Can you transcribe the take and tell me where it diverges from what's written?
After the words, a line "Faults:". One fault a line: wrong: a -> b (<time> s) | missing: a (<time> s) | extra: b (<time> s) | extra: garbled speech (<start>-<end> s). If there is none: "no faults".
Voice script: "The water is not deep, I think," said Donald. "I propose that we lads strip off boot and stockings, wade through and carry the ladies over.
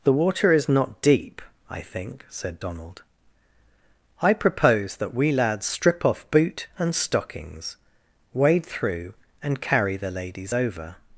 "The water is not deep, I think," said Donald. "I propose that we lads strip off boot and stockings, wade through and carry the ladies over.
Faults:
no faults